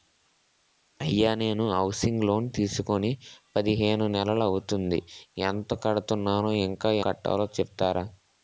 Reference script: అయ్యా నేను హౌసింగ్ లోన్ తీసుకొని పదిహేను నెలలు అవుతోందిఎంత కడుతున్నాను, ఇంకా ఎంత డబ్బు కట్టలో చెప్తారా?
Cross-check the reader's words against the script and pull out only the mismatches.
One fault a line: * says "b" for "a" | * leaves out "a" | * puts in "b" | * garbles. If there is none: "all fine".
* leaves out "ఎంత డబ్బు"